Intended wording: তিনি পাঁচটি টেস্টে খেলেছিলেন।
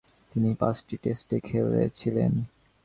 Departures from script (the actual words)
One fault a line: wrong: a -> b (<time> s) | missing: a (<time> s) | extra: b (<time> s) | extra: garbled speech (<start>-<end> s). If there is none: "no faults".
no faults